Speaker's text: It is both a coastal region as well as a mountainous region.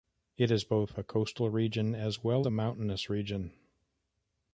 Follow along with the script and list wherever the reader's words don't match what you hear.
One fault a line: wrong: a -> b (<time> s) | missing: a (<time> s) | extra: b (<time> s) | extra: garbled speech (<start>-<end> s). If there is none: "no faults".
missing: as (2.5 s)